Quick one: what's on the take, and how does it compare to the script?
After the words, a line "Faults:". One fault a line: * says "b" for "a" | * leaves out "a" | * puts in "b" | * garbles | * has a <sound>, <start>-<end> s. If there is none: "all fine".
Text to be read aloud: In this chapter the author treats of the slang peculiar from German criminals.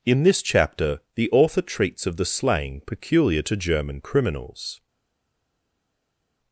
In this chapter the author treats of the slang peculiar to German criminals.
Faults:
* says "to" for "from"